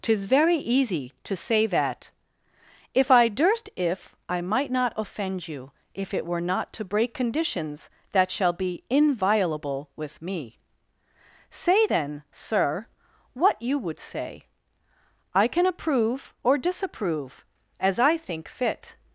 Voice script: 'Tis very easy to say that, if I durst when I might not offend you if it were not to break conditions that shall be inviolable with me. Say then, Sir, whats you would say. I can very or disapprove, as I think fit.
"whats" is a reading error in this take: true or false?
true